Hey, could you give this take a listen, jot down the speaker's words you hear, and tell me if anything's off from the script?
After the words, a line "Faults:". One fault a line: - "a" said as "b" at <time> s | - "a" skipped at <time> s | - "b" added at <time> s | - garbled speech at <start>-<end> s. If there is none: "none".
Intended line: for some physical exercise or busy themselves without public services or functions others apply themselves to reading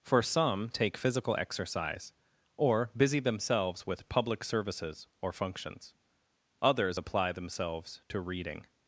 for some take physical exercise or busy themselves with public services or functions others apply themselves to reading
Faults:
- "take" added at 0.7 s
- "without" said as "with" at 3.9 s